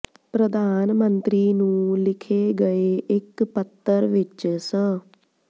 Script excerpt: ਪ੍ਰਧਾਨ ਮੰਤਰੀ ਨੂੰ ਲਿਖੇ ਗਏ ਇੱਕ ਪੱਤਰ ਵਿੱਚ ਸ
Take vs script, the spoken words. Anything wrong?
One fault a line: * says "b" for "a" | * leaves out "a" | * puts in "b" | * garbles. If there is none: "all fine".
all fine